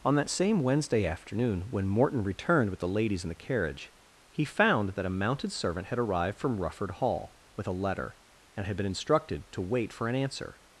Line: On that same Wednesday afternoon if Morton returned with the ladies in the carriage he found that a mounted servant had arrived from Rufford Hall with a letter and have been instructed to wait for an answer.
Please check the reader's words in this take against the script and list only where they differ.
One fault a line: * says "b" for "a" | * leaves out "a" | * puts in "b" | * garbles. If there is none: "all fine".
* says "when" for "if"
* says "had" for "have"